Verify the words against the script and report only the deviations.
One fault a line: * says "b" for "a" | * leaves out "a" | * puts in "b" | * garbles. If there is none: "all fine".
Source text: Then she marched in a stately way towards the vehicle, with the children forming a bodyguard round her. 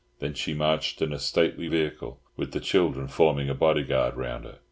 * leaves out "way towards the"